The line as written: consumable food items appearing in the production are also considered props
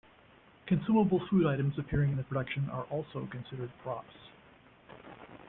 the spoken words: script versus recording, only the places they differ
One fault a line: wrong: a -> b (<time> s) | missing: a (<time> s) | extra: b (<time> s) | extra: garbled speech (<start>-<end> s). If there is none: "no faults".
no faults